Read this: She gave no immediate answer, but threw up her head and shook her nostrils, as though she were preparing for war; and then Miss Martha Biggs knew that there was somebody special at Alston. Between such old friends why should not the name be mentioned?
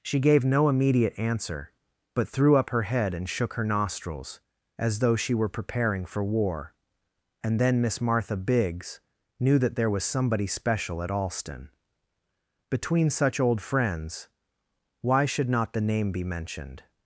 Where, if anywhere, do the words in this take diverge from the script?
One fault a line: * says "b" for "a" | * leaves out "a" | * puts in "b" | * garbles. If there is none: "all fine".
all fine